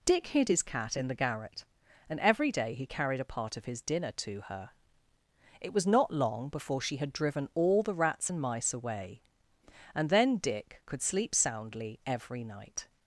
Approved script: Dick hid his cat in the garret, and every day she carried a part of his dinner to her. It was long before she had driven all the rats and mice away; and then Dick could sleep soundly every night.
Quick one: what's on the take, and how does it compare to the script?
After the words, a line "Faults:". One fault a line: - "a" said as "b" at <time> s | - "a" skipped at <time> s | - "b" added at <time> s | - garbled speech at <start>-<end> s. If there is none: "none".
Dick hid his cat in the garret, and every day he carried a part of his dinner to her. It was not long before she had driven all the rats and mice away; and then Dick could sleep soundly every night.
Faults:
- "she" said as "he" at 2.7 s
- "not" added at 5.9 s